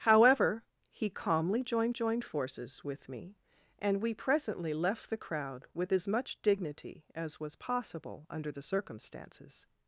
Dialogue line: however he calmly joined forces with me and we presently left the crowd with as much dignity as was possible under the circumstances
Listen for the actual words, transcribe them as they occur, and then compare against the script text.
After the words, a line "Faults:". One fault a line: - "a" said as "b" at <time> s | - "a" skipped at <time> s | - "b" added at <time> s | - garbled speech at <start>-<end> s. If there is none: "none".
however he calmly joined joined forces with me and we presently left the crowd with as much dignity as was possible under the circumstances
Faults:
- "joined" added at 1.9 s